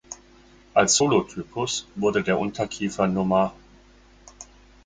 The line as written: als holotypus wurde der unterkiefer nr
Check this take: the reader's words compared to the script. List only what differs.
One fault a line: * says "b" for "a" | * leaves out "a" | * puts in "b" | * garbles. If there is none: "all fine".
all fine